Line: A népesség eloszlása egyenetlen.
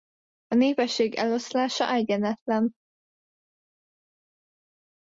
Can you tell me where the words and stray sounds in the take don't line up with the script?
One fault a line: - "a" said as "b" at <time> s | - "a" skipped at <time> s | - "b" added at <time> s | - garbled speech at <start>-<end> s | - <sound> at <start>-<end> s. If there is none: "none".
none